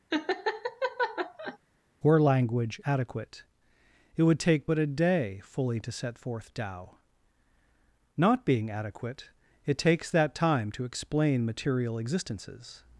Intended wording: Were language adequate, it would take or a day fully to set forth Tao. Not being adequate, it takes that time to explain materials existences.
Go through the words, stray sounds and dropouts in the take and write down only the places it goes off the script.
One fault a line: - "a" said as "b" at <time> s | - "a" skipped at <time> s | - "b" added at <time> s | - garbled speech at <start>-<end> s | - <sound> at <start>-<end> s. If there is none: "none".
- laugh at 0.1-1.6 s
- "or" said as "but" at 4.7 s
- "materials" said as "material" at 11.5 s